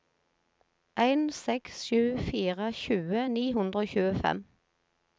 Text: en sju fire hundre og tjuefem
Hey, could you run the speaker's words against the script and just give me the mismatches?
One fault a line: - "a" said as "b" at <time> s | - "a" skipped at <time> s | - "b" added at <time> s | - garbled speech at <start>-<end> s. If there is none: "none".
- "seks" added at 1.4 s
- "tjue ni" added at 2.8 s